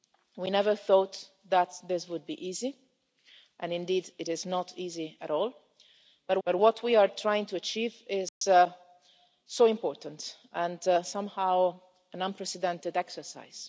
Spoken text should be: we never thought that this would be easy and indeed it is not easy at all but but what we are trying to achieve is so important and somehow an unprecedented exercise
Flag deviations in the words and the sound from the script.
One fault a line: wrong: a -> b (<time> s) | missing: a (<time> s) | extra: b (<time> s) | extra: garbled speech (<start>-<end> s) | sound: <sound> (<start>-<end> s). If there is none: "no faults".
sound: dropout (8.3-8.4 s)